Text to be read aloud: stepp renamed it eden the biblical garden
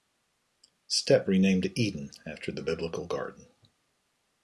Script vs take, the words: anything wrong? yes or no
yes